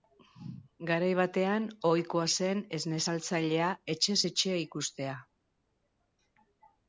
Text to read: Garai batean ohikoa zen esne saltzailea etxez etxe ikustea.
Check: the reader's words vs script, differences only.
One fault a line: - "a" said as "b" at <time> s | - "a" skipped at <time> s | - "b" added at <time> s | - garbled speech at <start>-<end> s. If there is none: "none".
none